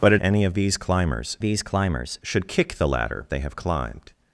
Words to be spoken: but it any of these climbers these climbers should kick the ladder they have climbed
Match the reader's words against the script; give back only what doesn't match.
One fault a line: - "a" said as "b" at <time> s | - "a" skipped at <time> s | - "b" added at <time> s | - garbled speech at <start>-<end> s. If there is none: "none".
none